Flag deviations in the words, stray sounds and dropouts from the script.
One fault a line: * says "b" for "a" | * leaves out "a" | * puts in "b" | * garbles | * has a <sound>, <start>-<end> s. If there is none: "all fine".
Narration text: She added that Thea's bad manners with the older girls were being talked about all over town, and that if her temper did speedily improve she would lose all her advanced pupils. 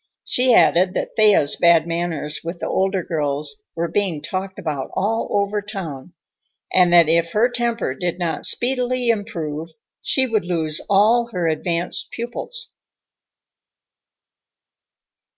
* puts in "not"